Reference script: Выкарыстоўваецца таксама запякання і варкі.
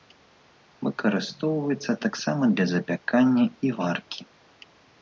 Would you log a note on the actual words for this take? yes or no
yes